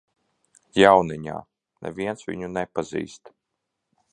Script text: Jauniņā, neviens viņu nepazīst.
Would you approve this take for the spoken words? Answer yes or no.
yes